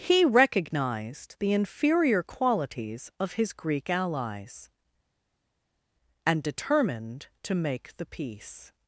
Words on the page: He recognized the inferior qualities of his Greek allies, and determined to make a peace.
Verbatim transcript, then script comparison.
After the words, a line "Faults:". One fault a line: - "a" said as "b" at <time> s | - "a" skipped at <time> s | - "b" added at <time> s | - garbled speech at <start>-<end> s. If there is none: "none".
He recognized the inferior qualities of his Greek allies, and determined to make the peace.
Faults:
- "a" said as "the" at 8.0 s